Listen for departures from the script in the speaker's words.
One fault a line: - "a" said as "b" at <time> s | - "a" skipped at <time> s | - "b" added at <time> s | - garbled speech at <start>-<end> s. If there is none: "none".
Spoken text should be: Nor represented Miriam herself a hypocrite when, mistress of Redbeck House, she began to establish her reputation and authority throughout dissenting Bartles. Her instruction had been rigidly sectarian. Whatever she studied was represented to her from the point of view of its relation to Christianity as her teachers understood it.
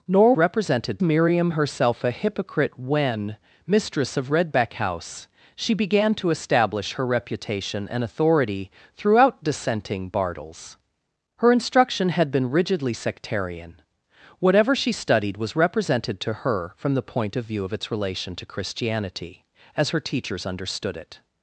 none